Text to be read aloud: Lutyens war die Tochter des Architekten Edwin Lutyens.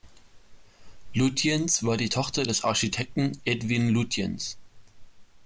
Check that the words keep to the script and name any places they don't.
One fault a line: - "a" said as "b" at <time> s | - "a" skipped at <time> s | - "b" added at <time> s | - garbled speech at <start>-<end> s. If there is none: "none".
none